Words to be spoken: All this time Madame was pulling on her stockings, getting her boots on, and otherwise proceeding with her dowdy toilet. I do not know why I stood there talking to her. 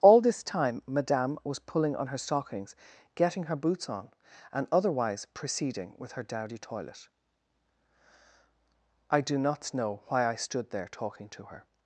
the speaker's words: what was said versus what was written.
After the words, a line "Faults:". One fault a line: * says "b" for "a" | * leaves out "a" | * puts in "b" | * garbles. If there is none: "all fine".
All this time Madame was pulling on her stockings, getting her boots on, and otherwise proceeding with her dowdy toilet. I do not know why I stood there talking to her.
Faults:
all fine